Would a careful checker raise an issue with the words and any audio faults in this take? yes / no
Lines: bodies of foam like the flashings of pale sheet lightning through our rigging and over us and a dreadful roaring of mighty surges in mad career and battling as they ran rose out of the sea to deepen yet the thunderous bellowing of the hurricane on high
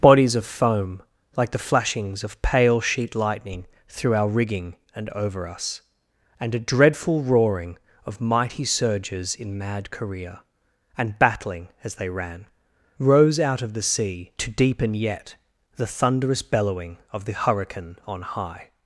no